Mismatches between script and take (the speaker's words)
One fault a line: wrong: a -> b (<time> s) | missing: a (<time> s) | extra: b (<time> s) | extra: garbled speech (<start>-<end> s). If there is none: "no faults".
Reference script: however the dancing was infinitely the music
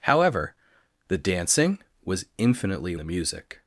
no faults